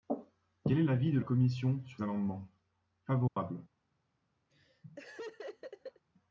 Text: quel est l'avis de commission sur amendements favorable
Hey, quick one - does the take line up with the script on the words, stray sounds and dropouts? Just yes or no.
no